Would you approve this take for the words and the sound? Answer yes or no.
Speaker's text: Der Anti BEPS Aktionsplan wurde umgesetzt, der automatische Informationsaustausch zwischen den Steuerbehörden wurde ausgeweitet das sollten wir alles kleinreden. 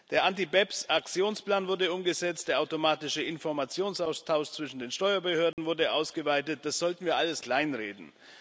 no